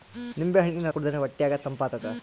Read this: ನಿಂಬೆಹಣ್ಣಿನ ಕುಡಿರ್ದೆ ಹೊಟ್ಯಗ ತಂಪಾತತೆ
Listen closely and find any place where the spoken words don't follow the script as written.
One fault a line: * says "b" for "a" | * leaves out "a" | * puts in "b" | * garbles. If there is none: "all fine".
all fine